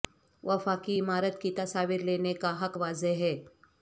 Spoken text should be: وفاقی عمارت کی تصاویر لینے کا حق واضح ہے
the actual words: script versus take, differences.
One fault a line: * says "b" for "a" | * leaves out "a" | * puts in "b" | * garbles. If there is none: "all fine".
all fine